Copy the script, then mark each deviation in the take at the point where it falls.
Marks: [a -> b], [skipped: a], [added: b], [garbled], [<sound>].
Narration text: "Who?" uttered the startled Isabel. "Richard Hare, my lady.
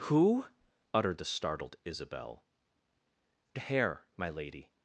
"Who?" uttered the startled Isabel. [skipped: "Richard] Hare, my lady.